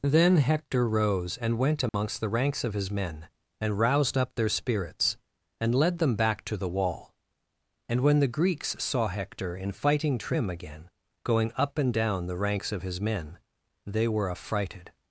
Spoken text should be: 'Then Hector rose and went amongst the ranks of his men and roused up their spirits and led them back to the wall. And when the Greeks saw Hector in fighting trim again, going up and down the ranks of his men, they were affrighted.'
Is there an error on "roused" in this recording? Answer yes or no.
no